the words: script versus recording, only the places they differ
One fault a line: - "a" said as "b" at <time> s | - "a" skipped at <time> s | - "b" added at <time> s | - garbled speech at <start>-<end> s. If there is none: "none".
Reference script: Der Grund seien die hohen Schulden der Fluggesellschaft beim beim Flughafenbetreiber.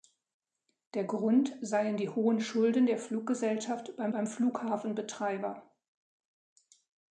none